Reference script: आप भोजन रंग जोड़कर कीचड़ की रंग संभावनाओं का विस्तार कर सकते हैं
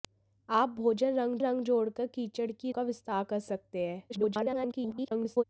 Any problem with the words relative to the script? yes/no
yes